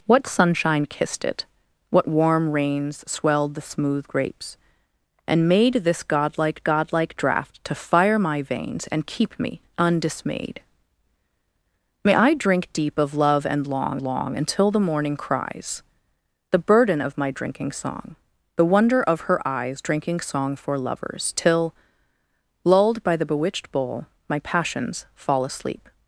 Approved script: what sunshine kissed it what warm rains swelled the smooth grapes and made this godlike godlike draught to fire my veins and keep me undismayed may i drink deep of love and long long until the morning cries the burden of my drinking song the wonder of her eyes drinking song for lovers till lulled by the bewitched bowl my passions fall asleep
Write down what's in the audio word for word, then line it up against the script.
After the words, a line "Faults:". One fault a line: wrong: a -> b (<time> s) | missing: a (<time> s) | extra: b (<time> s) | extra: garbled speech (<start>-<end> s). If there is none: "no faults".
what sunshine kissed it what warm rains swelled the smooth grapes and made this godlike godlike draught to fire my veins and keep me undismayed may i drink deep of love and long long until the morning cries the burden of my drinking song the wonder of her eyes drinking song for lovers till lulled by the bewitched bowl my passions fall asleep
Faults:
no faults